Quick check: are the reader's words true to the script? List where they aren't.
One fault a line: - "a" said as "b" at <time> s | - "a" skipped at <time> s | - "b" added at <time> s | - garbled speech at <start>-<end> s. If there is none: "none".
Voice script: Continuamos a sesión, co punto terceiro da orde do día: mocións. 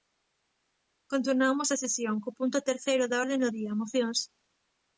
none